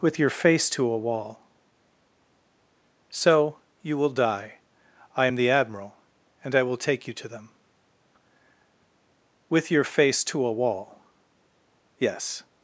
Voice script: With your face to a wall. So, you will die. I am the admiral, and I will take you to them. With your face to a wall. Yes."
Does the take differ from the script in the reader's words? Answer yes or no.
no